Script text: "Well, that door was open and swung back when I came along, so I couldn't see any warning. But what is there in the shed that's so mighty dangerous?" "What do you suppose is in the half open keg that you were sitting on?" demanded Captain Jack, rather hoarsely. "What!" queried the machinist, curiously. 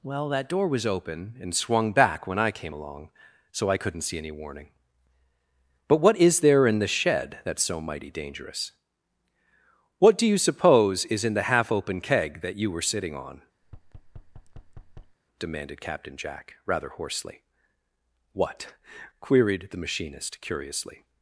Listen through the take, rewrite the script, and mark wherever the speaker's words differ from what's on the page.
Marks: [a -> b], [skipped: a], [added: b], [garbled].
"Well, that door was open and swung back when I came along, so I couldn't see any warning. But what is there in the shed that's so mighty dangerous?" "What do you suppose is in the half open keg that you were sitting on?" demanded Captain Jack, rather hoarsely. "What!" queried the machinist, curiously.